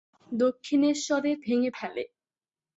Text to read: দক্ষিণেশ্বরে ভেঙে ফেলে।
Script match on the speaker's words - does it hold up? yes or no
yes